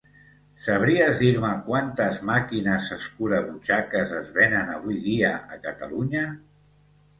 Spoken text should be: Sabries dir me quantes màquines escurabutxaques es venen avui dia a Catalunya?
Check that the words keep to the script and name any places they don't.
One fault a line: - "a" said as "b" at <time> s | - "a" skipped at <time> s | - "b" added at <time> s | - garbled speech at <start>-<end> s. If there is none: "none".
none